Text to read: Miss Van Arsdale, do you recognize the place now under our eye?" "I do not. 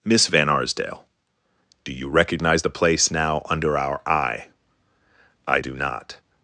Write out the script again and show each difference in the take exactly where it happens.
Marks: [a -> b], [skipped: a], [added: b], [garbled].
Miss Van Arsdale, do you recognize the place now under our eye?" "I do not.